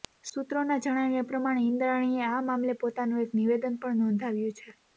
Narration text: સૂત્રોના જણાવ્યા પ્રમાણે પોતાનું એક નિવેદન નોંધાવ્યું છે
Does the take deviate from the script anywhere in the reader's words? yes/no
yes